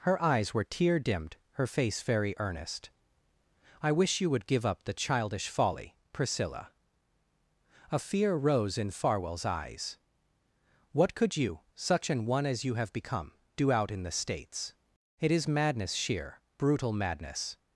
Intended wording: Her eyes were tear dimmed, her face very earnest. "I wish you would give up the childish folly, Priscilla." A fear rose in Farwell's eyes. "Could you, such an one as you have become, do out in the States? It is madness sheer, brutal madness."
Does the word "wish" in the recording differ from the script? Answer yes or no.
no